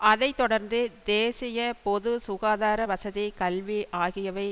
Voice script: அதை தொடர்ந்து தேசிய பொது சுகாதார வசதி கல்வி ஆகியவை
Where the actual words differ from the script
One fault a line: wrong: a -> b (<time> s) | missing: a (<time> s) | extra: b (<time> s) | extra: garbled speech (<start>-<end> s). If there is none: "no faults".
no faults